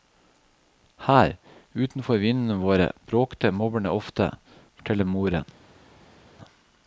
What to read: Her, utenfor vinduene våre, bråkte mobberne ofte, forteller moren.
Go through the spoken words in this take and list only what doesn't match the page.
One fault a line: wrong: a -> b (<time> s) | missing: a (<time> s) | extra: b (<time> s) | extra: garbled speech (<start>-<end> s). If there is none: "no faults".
no faults